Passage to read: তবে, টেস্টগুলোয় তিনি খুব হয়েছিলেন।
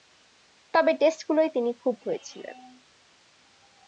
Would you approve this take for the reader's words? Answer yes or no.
yes